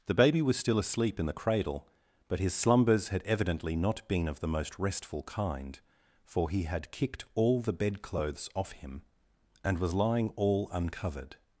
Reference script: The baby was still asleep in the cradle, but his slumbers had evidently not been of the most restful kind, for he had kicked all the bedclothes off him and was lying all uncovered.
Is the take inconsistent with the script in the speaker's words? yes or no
no